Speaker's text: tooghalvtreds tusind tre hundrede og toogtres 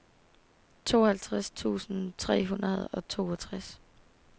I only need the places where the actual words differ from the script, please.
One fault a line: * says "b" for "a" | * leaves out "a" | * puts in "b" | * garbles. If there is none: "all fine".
all fine